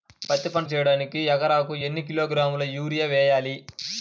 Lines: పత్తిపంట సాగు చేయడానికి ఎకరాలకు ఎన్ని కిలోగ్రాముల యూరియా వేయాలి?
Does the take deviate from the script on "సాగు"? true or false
true